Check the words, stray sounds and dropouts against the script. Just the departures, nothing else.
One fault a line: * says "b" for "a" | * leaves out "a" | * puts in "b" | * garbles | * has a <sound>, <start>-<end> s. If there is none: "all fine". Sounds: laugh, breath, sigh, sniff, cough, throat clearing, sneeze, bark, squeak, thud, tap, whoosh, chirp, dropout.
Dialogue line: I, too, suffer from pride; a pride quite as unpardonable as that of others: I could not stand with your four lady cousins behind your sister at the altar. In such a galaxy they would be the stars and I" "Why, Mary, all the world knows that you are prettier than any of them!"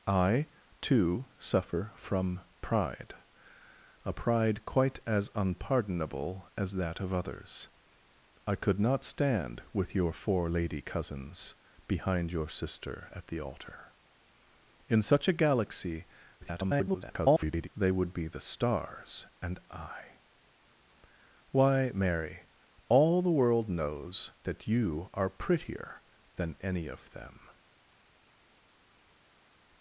* garbles